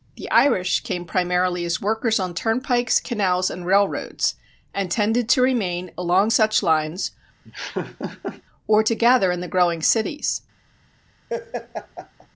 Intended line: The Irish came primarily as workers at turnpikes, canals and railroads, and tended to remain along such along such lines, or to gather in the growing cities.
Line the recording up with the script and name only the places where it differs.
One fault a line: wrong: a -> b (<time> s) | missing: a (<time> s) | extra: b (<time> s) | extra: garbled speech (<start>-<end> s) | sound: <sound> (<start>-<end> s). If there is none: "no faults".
wrong: at -> on (2.2 s)
missing: along such (6.6 s)
sound: laugh (7.4-8.4 s)
sound: laugh (11.3-12.3 s)